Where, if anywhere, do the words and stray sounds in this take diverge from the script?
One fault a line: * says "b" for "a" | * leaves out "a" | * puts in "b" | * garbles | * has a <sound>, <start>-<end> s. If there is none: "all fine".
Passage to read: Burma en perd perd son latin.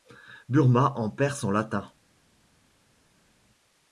* leaves out "perd"